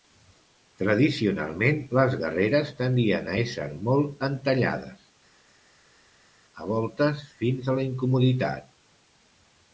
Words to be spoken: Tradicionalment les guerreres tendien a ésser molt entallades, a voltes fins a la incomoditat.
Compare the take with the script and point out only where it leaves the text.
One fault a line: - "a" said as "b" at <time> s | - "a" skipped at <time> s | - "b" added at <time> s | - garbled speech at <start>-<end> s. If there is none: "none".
none